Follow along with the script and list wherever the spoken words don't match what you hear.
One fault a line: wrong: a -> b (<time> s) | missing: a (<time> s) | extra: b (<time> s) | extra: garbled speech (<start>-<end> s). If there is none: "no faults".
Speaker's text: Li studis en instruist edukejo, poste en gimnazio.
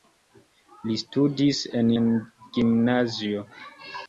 missing: instruist edukejo poste (1.9 s)